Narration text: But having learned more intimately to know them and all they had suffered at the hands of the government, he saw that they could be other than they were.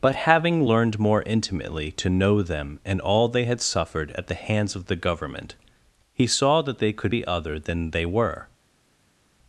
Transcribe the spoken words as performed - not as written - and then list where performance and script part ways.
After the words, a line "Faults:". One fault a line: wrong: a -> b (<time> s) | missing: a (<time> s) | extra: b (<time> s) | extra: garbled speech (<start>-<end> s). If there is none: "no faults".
But having learned more intimately to know them and all they had suffered at the hands of the government, he saw that they could be other than they were.
Faults:
no faults